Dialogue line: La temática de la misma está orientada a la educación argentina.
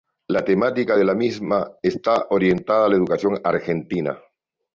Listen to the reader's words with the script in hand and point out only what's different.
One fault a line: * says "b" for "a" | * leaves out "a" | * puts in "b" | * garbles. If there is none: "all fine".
all fine